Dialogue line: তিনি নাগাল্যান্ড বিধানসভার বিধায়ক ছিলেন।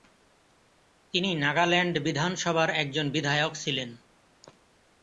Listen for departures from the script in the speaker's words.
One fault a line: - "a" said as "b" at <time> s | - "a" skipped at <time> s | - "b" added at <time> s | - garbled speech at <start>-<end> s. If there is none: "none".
- "একজন" added at 2.8 s